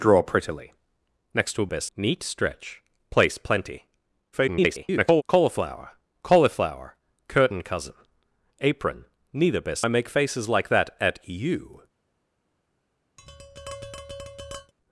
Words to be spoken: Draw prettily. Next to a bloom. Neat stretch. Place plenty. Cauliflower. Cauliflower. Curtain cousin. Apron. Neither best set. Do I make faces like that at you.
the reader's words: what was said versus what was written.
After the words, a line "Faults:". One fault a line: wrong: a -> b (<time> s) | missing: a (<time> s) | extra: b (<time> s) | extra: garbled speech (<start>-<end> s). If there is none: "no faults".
Draw prettily. Next to a best. Neat stretch. Place plenty. [garbled] Cauliflower. Cauliflower. Curtain cousin. Apron. Neither best I make faces like that at you.
Faults:
wrong: bloom -> best (1.7 s)
extra: garbled speech (4.3-5.2 s)
missing: set Do (9.9 s)